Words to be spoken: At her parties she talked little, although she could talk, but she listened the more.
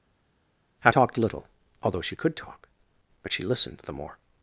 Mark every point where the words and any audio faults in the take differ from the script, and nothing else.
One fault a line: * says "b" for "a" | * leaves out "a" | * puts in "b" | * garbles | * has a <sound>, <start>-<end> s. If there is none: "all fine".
* leaves out "her parties she"